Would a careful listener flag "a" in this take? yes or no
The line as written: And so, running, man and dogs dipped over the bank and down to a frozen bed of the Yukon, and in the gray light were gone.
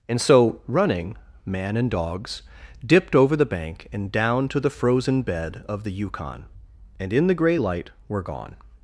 yes